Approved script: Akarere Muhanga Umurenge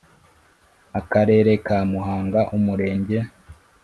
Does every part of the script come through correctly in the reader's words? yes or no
no